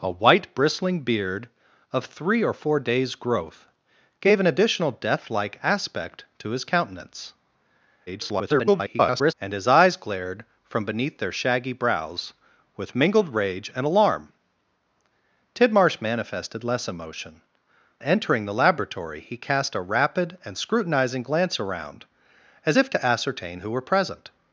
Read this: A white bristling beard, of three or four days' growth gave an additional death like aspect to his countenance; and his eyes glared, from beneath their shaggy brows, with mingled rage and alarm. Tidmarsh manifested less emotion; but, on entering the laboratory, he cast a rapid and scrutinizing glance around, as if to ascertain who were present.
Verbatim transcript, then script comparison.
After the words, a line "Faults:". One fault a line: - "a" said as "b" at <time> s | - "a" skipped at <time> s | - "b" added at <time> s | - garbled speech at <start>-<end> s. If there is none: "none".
A white bristling beard, of three or four days' growth gave an additional death like aspect to his countenance; [garbled] and his eyes glared, from beneath their shaggy brows, with mingled rage and alarm. Tidmarsh manifested less emotion; entering the laboratory, he cast a rapid and scrutinizing glance around, as if to ascertain who were present.
Faults:
- garbled speech at 8.1-9.3 s
- "but on" skipped at 17.4 s